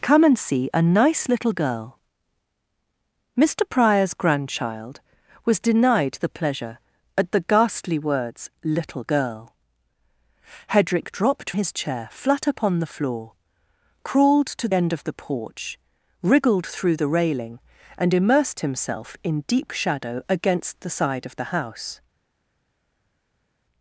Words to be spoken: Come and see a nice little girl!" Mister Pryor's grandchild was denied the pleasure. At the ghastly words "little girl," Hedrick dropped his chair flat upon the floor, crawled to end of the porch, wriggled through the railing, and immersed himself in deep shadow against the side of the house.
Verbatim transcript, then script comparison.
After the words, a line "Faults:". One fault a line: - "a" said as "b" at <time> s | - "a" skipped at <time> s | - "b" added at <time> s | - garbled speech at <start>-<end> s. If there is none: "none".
Come and see a nice little girl!" Mister Pryor's grandchild was denied the pleasure. At the ghastly words "little girl," Hedrick dropped his chair flat upon the floor, crawled to end of the porch, wriggled through the railing, and immersed himself in deep shadow against the side of the house.
Faults:
none